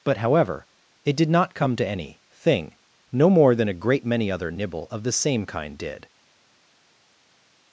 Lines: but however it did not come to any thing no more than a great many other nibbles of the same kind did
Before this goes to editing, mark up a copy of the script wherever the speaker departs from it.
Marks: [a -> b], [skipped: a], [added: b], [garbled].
but however it did not come to any thing no more than a great many other [nibbles -> nibble] of the same kind did